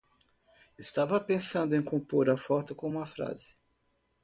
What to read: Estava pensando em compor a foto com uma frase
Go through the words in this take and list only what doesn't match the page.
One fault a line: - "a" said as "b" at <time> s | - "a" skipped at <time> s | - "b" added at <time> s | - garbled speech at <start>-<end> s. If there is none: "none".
none